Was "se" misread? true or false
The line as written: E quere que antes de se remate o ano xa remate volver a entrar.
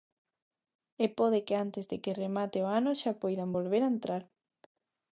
true